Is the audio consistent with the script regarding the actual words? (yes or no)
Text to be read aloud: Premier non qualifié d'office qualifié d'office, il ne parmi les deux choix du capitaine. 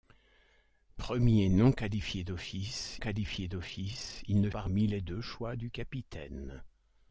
yes